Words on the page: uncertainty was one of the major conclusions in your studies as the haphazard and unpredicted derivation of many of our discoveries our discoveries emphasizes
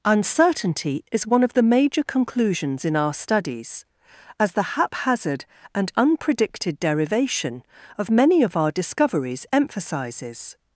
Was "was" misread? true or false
true